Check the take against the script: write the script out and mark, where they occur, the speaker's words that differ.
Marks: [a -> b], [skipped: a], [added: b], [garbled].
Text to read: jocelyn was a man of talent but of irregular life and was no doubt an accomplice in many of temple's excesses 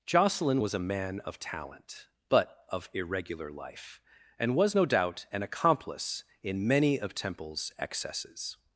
jocelyn was a man of talent but of irregular life and was no doubt an accomplice in many of temple's excesses